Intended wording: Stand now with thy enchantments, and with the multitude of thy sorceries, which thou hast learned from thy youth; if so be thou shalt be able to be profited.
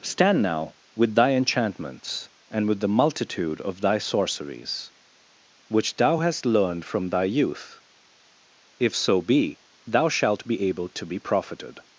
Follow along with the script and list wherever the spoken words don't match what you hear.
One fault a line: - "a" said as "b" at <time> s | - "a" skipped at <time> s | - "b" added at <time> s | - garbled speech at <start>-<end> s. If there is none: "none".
none